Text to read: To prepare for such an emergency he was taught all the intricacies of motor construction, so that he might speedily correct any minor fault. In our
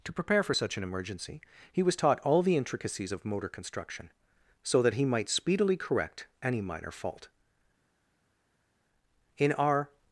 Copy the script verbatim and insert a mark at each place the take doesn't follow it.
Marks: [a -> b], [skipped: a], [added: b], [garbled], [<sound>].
To prepare for such an emergency he was taught all the intricacies of motor construction, so that he might speedily correct any minor fault. In our